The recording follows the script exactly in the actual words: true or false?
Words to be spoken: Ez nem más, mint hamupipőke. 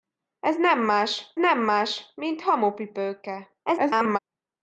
false